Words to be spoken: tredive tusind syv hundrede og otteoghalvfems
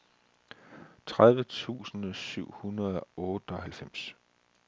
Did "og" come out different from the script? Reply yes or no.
yes